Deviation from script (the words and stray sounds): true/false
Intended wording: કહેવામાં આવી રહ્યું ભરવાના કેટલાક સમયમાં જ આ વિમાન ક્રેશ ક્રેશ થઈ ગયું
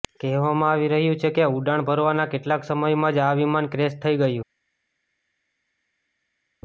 true